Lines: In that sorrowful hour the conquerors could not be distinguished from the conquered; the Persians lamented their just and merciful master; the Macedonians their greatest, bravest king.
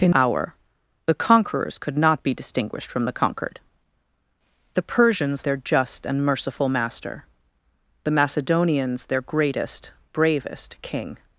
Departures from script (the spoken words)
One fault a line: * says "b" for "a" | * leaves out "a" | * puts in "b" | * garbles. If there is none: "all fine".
* leaves out "that sorrowful"
* leaves out "lamented"